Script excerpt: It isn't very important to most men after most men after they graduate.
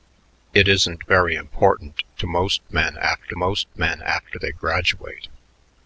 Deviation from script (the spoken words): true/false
false